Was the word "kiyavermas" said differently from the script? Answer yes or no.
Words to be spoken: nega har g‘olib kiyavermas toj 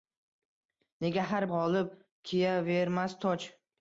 no